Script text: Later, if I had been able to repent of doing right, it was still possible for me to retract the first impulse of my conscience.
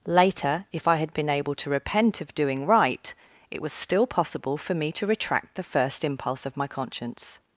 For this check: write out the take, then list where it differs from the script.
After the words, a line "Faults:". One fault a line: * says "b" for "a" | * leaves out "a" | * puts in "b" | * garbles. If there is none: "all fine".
Later, if I had been able to repent of doing right, it was still possible for me to retract the first impulse of my conscience.
Faults:
all fine